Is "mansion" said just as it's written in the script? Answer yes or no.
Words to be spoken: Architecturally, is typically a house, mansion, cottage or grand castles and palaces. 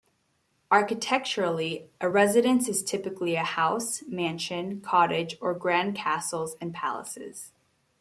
yes